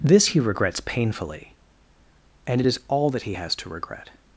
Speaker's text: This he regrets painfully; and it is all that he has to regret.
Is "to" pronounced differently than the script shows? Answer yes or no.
no